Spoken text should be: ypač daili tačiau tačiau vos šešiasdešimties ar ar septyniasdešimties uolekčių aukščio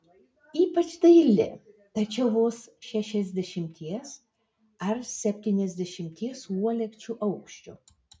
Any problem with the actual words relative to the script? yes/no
yes